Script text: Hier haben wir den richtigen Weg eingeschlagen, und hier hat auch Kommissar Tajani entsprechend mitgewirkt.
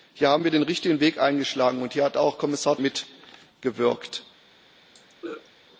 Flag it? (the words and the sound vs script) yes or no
yes